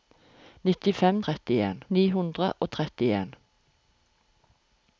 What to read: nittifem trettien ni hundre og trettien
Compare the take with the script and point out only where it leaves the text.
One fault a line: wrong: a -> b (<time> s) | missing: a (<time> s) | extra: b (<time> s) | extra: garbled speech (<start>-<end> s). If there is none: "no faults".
no faults